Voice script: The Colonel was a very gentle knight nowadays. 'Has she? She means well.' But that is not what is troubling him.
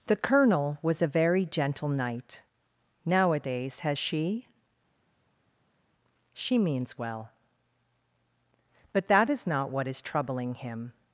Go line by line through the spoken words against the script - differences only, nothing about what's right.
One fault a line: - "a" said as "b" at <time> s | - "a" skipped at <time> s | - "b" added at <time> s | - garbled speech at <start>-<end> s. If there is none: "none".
none